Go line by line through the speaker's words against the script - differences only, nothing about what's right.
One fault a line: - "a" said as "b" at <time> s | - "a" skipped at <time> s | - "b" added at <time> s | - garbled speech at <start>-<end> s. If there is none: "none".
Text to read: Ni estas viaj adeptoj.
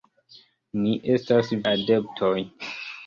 - "viaj" skipped at 1.5 s